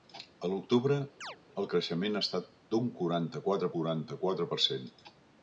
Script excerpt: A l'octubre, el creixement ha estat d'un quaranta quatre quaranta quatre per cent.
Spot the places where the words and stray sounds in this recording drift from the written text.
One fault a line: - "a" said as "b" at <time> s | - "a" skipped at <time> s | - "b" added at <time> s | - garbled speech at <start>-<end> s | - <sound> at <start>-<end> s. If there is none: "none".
- chirp at 1.2-1.4 s